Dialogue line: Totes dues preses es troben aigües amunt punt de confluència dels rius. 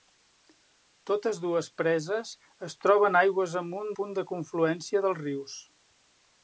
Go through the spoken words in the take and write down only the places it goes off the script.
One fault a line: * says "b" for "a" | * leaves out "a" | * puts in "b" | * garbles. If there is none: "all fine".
all fine